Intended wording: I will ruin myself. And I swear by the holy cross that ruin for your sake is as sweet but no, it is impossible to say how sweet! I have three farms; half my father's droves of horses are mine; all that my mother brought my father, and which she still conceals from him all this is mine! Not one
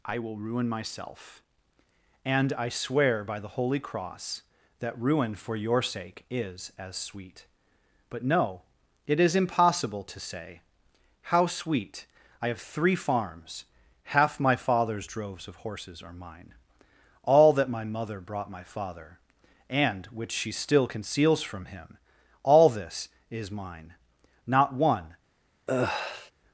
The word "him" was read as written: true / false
true